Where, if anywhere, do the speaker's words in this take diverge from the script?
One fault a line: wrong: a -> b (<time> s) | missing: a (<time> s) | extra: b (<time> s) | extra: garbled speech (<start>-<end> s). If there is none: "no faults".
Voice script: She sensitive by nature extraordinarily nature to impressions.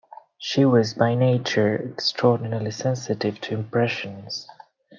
wrong: sensitive -> was (0.7 s)
wrong: nature -> sensitive (2.7 s)